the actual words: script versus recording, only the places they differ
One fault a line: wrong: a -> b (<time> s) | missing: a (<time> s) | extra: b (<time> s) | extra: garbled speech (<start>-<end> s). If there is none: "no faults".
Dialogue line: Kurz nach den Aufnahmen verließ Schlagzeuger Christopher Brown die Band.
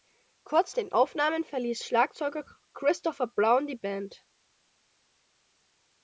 missing: nach (0.7 s)